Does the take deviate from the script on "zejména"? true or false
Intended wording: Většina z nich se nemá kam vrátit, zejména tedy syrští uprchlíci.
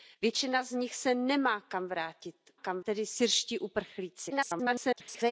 true